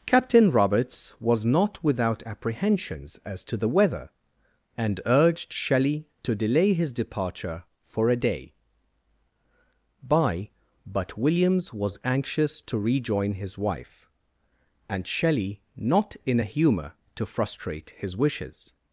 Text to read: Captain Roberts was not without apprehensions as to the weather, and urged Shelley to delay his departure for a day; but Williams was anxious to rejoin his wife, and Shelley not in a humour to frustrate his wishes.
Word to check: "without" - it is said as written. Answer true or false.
true